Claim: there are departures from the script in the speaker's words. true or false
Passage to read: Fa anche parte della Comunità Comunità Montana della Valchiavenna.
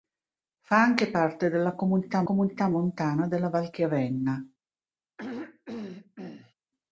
false